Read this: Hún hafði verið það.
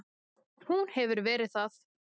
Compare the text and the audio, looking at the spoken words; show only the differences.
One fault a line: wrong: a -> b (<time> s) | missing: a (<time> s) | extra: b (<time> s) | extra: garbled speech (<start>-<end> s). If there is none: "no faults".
wrong: hafði -> hefur (0.9 s)